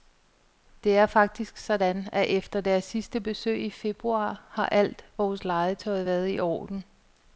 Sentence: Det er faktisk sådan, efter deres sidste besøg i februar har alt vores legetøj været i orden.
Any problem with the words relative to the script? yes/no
yes